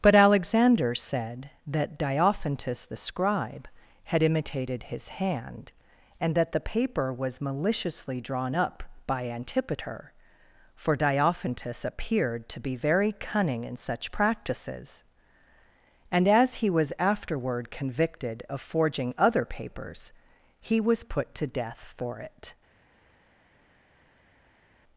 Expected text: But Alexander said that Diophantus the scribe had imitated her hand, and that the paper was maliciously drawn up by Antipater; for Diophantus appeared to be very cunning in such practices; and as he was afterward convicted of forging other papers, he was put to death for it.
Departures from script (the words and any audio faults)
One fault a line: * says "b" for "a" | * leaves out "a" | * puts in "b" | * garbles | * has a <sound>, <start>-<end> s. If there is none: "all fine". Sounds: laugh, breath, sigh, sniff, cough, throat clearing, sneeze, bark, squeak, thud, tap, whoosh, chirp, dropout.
* says "his" for "her"